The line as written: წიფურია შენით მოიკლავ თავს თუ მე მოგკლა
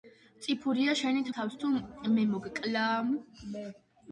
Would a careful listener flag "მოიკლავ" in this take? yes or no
yes